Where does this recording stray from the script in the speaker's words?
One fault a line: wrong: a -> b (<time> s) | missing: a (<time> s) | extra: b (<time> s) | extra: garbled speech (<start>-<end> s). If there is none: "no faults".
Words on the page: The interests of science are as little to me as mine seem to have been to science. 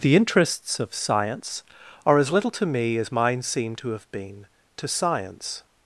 no faults